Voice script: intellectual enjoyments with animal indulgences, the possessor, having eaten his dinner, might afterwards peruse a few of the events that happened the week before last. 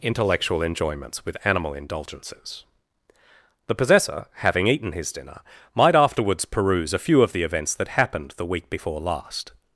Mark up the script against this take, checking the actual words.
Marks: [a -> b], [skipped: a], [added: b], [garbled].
intellectual enjoyments with animal indulgences, the possessor, having eaten his dinner, might afterwards peruse a few of the events that happened the week before last.